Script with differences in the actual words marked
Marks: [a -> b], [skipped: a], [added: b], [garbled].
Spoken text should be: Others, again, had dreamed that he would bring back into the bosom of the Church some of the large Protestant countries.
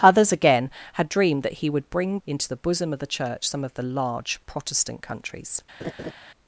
Others, again, had dreamed that he would bring [skipped: back] into the bosom of the Church some of the large Protestant countries.